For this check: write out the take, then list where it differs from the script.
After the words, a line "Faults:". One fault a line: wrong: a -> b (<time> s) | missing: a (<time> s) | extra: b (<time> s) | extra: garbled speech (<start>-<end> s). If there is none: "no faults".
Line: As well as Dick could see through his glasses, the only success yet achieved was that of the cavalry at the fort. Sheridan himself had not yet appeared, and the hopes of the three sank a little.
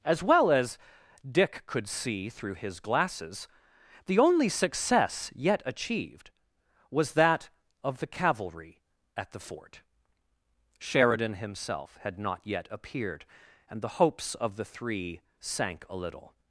As well as Dick could see through his glasses, the only success yet achieved was that of the cavalry at the fort. Sheridan himself had not yet appeared, and the hopes of the three sank a little.
Faults:
no faults